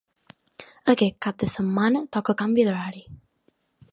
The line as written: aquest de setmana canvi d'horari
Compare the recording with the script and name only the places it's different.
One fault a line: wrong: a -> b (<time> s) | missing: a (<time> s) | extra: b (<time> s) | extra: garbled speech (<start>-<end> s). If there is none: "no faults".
extra: cap (1.2 s)
extra: toca (2.2 s)